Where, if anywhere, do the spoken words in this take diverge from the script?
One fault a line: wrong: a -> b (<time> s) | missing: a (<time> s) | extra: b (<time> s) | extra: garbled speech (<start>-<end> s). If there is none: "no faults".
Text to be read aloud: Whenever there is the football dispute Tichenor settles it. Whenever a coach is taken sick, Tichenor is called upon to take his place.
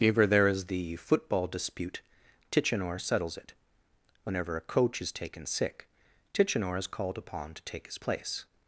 no faults